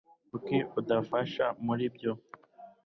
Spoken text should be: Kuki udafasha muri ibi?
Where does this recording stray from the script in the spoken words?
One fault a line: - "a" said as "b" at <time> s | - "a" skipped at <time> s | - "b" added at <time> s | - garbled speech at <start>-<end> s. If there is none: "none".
- "ibi" said as "ibyo" at 1.9 s